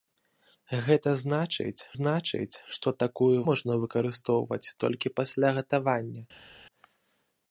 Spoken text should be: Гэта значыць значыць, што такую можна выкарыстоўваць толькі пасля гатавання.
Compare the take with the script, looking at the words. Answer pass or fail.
pass